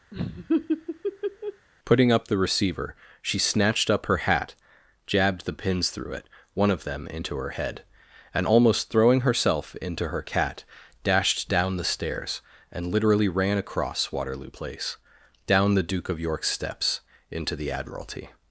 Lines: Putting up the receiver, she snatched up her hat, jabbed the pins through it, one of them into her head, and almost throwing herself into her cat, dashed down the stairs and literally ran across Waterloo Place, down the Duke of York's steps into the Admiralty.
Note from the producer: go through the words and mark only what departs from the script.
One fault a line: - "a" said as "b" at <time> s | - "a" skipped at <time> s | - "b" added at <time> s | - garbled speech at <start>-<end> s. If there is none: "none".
none